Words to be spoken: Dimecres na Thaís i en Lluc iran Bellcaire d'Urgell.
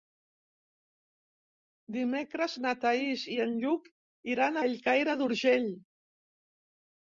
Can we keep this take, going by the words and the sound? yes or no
yes